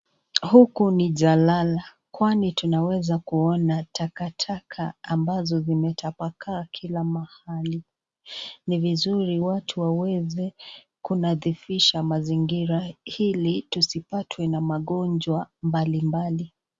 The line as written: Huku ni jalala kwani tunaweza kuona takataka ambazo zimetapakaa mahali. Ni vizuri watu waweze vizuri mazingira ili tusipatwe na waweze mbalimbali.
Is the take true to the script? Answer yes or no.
no